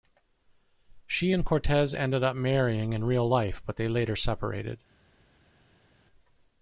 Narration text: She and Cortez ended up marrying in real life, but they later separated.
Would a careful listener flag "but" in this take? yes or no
no